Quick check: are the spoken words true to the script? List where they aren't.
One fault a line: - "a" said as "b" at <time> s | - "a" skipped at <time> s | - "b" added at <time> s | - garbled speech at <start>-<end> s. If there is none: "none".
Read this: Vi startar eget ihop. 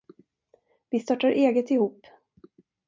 none